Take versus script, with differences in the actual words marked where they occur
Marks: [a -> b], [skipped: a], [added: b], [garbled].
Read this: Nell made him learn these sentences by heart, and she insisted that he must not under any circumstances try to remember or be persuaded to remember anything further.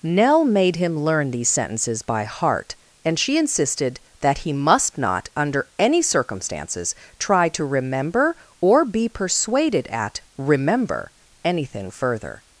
Nell made him learn these sentences by heart, and she insisted that he must not under any circumstances try to remember or be persuaded [to -> at] remember anything further.